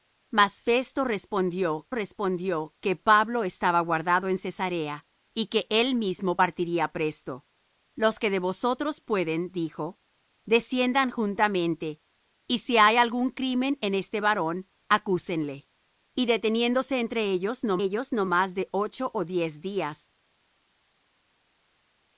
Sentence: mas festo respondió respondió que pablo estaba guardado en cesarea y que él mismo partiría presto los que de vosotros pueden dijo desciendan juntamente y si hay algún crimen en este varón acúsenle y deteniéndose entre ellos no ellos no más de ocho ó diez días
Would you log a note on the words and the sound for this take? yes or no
no